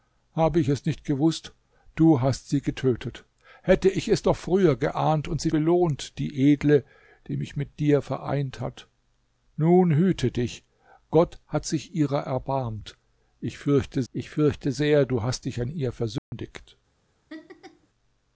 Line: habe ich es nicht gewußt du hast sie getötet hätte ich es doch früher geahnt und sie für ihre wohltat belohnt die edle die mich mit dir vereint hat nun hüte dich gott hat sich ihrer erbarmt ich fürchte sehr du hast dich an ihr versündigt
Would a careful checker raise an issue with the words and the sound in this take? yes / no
yes